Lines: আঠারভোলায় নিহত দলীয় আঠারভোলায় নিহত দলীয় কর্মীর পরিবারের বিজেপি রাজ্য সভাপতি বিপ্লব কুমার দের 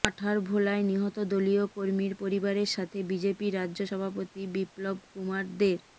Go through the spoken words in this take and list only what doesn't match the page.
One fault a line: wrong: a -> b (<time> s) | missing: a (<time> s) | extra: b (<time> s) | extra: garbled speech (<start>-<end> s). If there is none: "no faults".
missing: আঠারভোলায় নিহত দলীয় (1.6 s)
extra: সাথে (2.7 s)